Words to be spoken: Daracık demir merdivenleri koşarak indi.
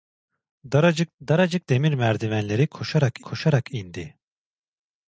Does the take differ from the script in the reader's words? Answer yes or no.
yes